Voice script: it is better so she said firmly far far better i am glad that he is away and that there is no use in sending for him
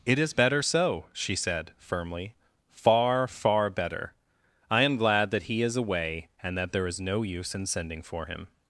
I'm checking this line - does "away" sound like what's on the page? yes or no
yes